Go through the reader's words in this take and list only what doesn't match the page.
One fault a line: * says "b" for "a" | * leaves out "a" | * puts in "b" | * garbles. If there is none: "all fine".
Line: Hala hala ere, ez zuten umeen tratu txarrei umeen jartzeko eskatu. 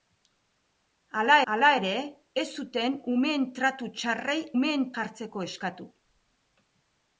all fine